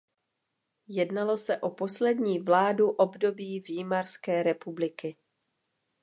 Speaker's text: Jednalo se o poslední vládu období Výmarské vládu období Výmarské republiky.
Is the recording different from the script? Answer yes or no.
yes